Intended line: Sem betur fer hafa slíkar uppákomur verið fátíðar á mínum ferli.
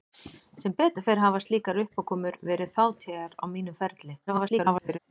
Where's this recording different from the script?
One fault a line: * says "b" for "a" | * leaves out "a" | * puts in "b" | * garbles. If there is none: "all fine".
* garbles